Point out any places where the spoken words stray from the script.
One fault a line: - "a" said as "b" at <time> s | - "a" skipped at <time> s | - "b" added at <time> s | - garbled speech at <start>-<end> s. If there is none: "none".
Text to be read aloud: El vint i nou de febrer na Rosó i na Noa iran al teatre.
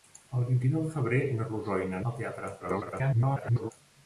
- "Noa iran" skipped at 2.0 s
- garbled speech at 2.6-3.7 s